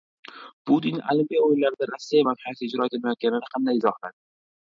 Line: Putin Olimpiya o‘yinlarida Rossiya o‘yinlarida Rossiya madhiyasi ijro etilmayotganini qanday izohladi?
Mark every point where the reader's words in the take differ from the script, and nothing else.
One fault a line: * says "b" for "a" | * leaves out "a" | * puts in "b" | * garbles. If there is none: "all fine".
* leaves out "o‘yinlarida Rossiya"